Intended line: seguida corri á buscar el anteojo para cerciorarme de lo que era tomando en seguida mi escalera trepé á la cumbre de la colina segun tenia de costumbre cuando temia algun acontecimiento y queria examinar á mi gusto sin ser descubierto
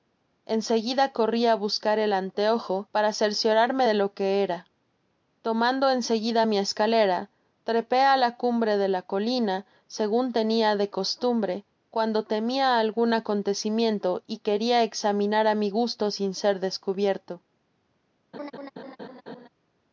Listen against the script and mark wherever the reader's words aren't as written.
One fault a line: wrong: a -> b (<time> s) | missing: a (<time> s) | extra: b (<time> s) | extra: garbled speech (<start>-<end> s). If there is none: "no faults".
no faults